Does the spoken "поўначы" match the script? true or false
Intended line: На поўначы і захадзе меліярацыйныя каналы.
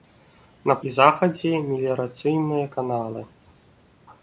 false